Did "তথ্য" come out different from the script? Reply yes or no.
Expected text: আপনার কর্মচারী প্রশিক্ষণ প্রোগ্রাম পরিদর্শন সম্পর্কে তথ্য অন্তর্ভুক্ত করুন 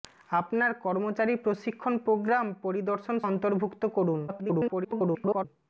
yes